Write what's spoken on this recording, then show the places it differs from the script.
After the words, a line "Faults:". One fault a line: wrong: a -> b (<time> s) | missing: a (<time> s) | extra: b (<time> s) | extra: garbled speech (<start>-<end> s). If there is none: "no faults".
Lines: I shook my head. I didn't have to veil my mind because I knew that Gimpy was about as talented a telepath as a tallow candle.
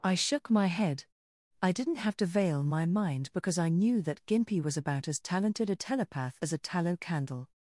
I shook my head. I didn't have to veil my mind because I knew that Gimpy was about as talented a telepath as a tallow candle.
Faults:
no faults